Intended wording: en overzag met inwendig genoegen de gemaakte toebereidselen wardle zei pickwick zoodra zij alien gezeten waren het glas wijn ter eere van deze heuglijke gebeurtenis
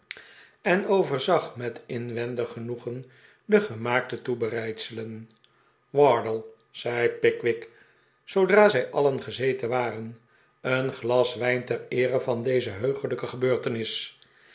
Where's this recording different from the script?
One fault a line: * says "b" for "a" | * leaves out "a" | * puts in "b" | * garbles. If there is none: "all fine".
* says "een" for "het"